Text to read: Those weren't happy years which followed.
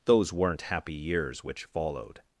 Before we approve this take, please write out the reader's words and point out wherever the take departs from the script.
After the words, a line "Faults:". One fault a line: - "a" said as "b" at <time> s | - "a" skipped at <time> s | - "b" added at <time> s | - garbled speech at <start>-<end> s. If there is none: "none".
Those weren't happy years which followed.
Faults:
none